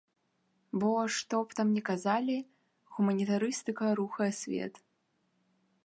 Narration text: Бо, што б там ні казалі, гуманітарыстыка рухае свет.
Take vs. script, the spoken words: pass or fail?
pass